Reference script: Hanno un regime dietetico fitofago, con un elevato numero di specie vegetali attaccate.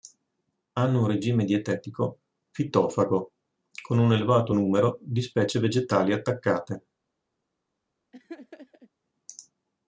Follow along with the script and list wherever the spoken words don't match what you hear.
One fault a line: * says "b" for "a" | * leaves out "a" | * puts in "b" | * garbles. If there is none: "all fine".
all fine